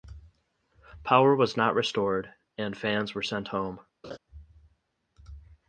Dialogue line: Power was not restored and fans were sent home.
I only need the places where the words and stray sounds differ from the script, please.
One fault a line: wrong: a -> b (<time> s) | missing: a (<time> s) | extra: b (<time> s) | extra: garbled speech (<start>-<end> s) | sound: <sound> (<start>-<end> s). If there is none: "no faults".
sound: laugh (4.0-4.2 s)